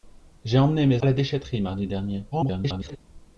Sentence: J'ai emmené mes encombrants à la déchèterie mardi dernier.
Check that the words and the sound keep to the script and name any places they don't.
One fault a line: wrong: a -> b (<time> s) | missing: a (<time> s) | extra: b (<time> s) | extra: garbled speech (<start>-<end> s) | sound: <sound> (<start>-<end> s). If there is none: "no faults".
missing: encombrants (1.0 s)
extra: garbled speech (2.3-3.0 s)